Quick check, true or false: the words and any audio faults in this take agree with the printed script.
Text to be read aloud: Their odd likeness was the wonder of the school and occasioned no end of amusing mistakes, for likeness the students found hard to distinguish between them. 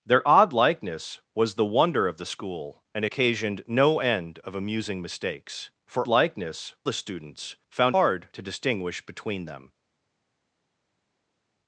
true